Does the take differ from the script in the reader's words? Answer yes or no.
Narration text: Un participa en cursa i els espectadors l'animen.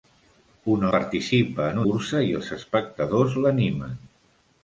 no